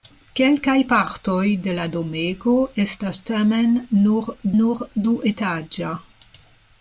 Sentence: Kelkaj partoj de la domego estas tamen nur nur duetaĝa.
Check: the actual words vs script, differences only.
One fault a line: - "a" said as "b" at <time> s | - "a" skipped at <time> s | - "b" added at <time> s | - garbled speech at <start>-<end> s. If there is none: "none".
none